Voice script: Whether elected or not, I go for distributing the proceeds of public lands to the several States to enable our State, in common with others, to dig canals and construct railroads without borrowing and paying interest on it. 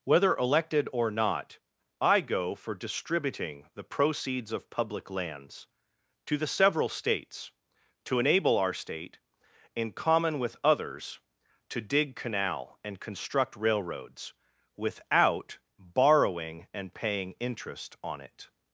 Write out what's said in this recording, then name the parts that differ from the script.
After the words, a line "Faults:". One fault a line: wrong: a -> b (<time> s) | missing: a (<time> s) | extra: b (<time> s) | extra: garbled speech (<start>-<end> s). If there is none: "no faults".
Whether elected or not, I go for distributing the proceeds of public lands to the several States to enable our State, in common with others, to dig canal and construct railroads without borrowing and paying interest on it.
Faults:
wrong: canals -> canal (12.2 s)